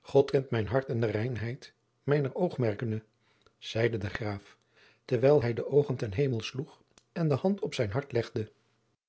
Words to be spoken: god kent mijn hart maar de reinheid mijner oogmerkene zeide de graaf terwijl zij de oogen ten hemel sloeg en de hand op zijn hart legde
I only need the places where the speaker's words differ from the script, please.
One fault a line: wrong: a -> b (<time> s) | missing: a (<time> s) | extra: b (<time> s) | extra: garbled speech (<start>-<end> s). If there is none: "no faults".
wrong: maar -> en (0.9 s)
wrong: zij -> hij (5.4 s)